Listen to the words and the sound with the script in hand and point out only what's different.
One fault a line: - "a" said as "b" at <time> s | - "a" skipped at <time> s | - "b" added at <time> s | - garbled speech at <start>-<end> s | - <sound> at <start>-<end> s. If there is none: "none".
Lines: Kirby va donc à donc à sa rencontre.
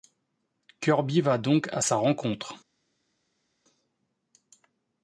- "donc à" skipped at 1.8 s